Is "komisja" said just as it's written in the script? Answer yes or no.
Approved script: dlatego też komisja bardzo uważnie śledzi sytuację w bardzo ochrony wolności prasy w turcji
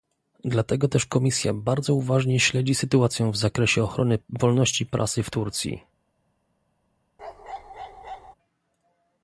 yes